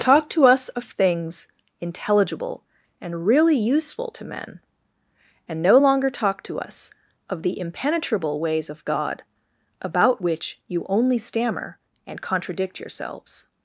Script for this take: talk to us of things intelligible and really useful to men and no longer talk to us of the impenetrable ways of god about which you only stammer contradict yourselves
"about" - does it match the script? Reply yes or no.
yes